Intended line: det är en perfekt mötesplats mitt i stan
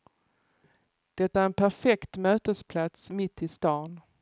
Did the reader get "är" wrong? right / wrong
right